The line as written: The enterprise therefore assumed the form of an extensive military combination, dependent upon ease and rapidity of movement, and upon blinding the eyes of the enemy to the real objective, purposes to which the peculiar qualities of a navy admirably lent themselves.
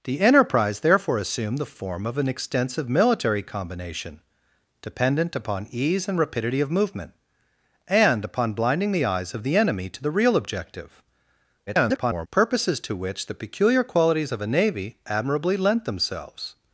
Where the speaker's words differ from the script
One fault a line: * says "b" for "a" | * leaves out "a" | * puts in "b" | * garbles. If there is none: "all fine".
* garbles